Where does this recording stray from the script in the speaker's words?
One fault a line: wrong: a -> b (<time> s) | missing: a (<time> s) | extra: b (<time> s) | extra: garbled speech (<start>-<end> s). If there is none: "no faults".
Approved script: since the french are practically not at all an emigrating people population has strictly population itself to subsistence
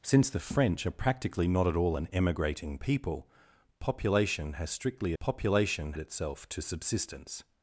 no faults